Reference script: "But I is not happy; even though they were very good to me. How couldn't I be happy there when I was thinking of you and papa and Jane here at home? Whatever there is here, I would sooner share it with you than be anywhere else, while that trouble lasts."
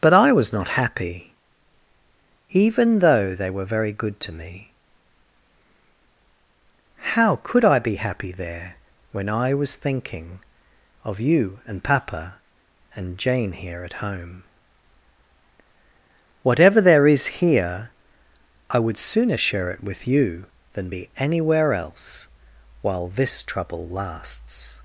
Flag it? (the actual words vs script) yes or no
yes